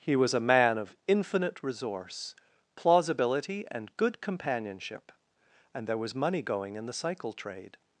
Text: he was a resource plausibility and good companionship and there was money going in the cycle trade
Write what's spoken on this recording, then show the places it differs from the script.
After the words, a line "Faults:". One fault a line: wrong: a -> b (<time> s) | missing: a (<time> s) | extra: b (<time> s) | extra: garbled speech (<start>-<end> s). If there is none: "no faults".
he was a man of infinite resource plausibility and good companionship and there was money going in the cycle trade
Faults:
extra: man of infinite (0.4 s)